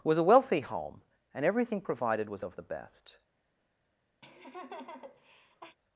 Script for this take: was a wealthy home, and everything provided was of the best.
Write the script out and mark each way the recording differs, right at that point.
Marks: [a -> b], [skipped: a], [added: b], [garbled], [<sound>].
was a wealthy home, and everything provided was of the best. [laugh]